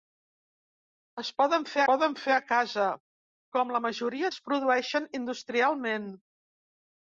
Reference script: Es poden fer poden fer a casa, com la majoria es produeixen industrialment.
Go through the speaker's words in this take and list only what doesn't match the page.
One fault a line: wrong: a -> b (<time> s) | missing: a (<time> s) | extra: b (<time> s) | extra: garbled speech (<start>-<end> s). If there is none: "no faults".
no faults